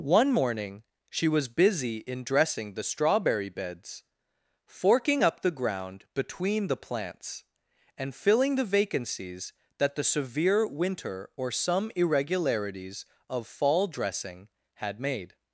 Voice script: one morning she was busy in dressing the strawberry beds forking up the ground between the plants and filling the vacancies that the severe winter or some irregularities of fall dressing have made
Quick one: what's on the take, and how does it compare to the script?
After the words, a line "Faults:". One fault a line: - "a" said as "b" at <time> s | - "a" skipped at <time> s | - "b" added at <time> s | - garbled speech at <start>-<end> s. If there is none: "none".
one morning she was busy in dressing the strawberry beds forking up the ground between the plants and filling the vacancies that the severe winter or some irregularities of fall dressing had made
Faults:
- "have" said as "had" at 14.8 s